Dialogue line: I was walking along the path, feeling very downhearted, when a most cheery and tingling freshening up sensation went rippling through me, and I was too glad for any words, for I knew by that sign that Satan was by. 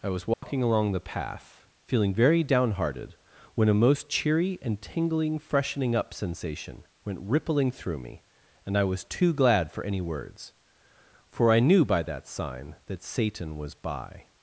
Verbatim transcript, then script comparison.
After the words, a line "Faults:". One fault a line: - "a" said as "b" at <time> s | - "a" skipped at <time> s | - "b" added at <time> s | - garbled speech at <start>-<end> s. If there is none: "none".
I was walking along the path, feeling very downhearted, when a most cheery and tingling freshening up sensation went rippling through me, and I was too glad for any words, for I knew by that sign that Satan was by.
Faults:
none